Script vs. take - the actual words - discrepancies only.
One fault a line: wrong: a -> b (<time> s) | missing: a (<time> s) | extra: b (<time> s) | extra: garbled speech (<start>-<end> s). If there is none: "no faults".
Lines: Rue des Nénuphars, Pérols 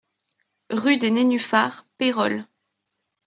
no faults